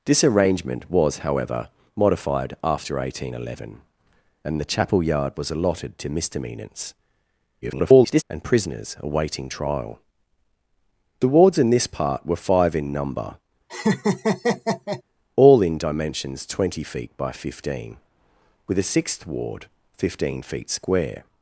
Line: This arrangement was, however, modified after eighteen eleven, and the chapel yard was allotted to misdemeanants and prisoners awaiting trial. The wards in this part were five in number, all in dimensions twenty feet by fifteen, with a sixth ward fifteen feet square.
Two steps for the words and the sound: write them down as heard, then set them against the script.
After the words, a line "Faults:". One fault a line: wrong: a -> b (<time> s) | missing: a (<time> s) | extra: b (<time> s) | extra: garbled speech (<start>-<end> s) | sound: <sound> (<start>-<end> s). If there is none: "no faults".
This arrangement was, however, modified after eighteen eleven, and the chapel yard was allotted to misdemeanants [garbled] and prisoners awaiting trial. The wards in this part were five in number, all in dimensions twenty feet by fifteen, with a sixth ward fifteen feet square.
Faults:
extra: garbled speech (7.6-8.2 s)
sound: laugh (13.7-15.0 s)